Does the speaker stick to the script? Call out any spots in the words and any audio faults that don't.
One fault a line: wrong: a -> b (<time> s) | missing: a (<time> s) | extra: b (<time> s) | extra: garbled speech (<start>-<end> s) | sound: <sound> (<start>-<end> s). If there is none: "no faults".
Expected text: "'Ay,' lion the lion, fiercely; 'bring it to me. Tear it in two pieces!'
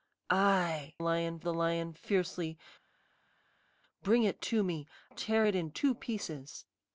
no faults